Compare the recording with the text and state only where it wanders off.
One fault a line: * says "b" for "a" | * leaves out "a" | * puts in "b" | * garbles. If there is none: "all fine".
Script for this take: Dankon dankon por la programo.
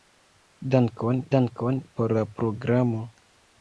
all fine